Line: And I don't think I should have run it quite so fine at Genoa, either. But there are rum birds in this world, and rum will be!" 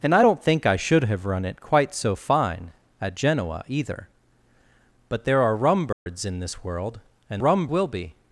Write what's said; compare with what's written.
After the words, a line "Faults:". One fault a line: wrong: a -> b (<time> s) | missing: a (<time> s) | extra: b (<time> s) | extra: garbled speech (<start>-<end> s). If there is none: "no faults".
And I don't think I should have run it quite so fine at Genoa, either. But there are rum birds in this world, and rum will be!"
Faults:
no faults